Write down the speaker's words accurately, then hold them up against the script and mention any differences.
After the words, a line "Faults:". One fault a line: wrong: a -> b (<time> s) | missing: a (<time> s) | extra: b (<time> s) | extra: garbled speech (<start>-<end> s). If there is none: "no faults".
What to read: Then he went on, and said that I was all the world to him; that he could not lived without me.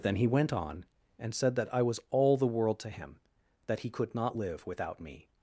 Then he went on, and said that I was all the world to him; that he could not live without me.
Faults:
wrong: lived -> live (4.3 s)